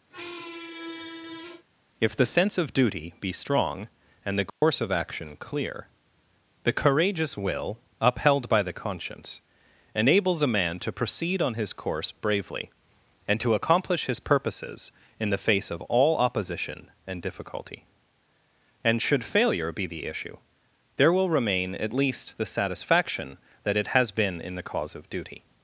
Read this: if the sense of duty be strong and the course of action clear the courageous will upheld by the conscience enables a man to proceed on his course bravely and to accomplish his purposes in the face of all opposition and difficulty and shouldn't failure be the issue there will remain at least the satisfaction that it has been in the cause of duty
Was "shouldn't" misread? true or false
true